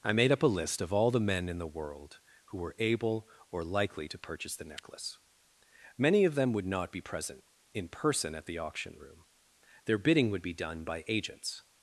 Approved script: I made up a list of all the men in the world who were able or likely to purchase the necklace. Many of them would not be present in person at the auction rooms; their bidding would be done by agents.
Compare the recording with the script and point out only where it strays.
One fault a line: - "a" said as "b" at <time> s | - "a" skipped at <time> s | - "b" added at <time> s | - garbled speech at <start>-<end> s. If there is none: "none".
- "rooms" said as "room" at 9.0 s